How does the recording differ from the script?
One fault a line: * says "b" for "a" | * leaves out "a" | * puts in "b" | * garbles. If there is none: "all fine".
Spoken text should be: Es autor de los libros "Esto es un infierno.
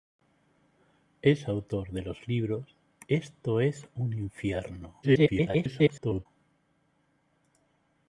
* garbles